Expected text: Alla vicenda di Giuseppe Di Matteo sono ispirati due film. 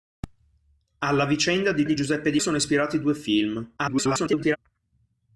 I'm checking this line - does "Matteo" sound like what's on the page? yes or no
no